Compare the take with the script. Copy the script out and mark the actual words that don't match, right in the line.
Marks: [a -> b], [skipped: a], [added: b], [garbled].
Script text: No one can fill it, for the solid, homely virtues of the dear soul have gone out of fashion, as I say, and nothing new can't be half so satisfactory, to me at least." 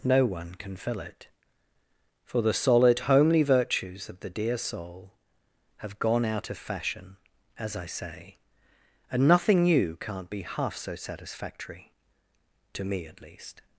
No one can fill it, for the solid, homely virtues of the dear soul have gone out of fashion, as I say, and nothing new can't be half so satisfactory, to me at least."